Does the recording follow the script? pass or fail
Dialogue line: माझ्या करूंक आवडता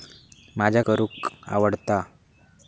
pass